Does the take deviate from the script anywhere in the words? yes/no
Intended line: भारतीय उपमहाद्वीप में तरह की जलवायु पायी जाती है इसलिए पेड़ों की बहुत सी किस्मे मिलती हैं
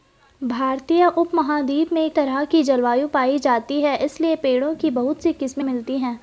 no